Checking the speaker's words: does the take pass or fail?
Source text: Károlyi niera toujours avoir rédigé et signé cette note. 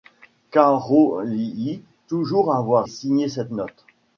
fail